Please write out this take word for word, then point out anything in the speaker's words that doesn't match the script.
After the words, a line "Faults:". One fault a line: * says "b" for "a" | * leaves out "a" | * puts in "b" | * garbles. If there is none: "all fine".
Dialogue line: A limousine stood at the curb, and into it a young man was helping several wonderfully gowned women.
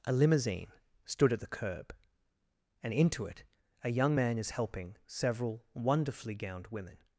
A limousine stood at the curb, and into it a young man is helping several wonderfully gowned women.
Faults:
* says "is" for "was"